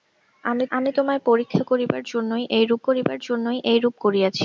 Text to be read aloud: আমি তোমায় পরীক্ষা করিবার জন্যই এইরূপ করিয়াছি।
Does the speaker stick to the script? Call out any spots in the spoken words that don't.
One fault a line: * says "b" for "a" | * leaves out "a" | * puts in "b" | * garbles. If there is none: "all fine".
* puts in "আমি"
* puts in "করিবার জন্যই এইরূপ"